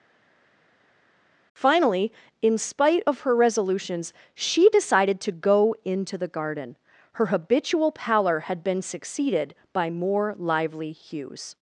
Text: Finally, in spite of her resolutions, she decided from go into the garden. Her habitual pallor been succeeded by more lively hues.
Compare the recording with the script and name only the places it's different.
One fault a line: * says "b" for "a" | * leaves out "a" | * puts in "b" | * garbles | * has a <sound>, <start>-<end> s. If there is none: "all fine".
* says "to" for "from"
* puts in "had"